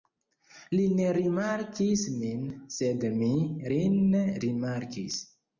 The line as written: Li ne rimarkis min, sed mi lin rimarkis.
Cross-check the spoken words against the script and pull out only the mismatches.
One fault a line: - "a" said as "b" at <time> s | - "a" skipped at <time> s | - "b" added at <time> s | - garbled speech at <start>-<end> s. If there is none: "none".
none